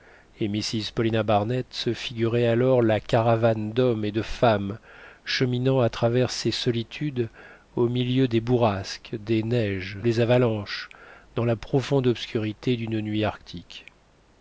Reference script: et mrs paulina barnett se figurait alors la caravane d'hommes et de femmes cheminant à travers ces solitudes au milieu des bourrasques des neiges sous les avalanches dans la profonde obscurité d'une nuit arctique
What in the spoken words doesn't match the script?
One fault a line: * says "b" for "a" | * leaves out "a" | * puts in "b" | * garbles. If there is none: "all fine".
* leaves out "sous"